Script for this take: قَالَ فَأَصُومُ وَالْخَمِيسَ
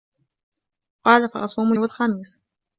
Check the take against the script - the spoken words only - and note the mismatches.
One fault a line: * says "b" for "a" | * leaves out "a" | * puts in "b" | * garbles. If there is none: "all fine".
all fine